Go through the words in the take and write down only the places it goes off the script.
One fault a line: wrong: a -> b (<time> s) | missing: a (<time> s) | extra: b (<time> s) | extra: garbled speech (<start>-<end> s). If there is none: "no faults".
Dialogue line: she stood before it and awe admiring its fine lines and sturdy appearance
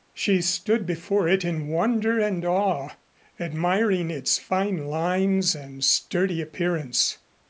extra: in wonder (1.4 s)